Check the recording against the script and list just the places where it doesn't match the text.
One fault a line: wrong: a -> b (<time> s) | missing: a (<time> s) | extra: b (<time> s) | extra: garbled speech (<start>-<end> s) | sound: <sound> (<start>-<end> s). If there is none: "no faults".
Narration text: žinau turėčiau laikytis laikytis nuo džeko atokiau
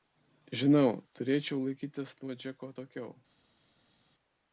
missing: laikytis (2.2 s)